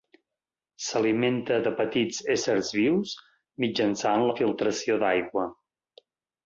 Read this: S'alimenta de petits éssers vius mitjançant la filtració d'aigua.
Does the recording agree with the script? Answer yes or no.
yes